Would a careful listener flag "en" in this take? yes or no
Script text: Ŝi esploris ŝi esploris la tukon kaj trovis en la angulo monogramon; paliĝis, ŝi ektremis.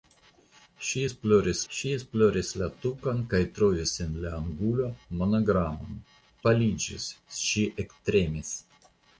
no